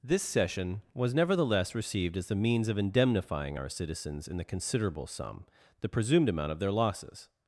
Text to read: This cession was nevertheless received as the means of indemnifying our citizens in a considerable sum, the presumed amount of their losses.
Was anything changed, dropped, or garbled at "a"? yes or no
yes